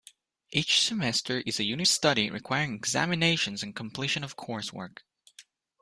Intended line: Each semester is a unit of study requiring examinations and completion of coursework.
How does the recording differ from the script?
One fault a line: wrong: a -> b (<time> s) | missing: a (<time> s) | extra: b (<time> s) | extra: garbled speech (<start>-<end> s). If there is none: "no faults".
missing: of (1.9 s)